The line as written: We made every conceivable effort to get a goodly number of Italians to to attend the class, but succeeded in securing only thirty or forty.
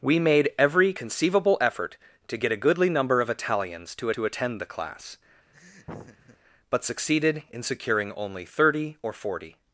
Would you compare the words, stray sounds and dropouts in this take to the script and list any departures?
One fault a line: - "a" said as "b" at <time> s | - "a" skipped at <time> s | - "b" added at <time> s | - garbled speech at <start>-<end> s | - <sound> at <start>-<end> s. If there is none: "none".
- laugh at 5.5-6.4 s